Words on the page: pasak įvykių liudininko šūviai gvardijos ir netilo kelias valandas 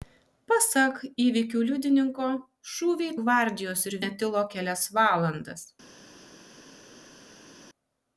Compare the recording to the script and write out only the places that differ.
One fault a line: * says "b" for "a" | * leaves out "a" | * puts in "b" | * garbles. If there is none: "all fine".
all fine